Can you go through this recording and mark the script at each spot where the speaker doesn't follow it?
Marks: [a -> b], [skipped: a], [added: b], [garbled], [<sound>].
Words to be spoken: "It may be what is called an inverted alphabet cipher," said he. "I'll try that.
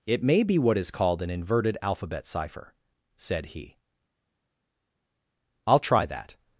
"It may be what is called an inverted alphabet cipher," said he. "I'll try that.